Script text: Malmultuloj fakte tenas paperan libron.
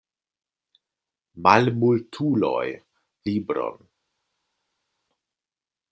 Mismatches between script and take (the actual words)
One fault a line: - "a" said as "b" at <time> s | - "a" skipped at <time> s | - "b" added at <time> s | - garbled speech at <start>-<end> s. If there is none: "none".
- "fakte tenas paperan" skipped at 2.6 s